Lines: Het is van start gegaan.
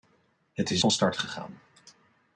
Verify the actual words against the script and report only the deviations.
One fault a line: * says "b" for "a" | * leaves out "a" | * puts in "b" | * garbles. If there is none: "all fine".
all fine